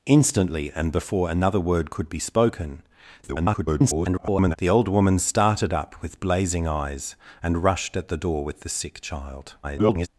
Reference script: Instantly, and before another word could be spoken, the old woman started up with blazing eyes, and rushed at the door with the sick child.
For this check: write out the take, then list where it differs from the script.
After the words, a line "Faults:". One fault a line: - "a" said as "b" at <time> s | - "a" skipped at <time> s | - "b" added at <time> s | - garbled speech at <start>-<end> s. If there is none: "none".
Instantly, and before another word could be spoken, [garbled] the old woman started up with blazing eyes, and rushed at the door with the sick child. [garbled]
Faults:
- garbled speech at 3.2-4.6 s
- garbled speech at 9.6-10.1 s